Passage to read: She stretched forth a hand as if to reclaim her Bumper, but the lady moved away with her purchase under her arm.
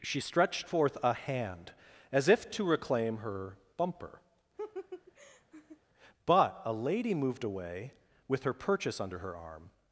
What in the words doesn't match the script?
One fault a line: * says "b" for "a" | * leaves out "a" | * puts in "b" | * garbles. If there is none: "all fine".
* says "a" for "the"